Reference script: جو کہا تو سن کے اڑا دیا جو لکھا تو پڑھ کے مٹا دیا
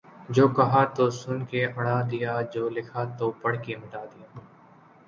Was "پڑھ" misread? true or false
false